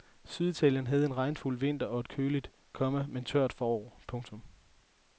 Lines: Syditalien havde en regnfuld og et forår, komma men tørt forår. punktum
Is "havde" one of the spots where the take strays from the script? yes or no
no